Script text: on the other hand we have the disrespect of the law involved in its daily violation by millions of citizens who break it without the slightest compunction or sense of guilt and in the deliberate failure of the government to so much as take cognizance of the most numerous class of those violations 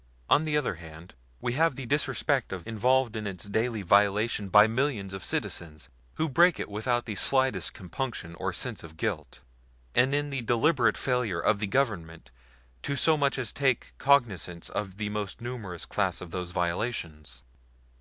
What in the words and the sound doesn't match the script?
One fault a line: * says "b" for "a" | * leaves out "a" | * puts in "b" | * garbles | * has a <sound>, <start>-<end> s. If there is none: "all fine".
* leaves out "the law"